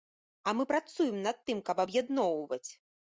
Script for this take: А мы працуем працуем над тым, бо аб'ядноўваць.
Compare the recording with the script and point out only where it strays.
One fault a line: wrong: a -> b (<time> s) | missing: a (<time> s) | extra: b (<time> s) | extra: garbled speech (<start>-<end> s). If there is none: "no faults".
missing: працуем (1.2 s)
wrong: бо -> каб (1.7 s)